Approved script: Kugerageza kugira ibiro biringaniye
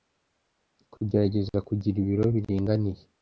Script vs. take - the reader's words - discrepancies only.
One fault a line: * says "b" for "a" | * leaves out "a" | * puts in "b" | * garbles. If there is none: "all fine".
all fine